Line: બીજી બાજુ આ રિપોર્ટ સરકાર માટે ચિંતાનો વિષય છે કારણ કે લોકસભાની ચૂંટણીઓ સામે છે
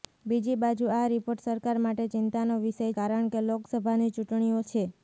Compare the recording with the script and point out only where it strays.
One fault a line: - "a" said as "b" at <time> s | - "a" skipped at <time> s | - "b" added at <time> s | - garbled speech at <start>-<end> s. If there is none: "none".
- "છે" skipped at 2.9 s
- "સામે" skipped at 4.6 s